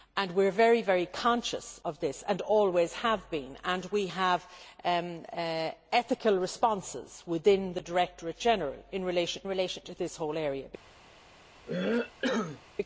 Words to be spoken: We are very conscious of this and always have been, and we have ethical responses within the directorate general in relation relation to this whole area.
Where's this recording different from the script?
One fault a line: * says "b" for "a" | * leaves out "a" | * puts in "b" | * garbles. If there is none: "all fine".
all fine